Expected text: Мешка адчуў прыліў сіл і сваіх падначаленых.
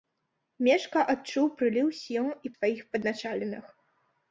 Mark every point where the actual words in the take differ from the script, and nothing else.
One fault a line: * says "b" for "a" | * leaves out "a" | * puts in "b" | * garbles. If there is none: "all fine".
all fine